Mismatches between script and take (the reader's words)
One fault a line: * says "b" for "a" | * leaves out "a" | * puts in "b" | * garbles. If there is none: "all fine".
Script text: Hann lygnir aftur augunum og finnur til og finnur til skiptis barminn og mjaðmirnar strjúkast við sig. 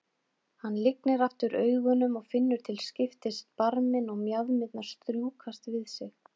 * leaves out "og finnur til"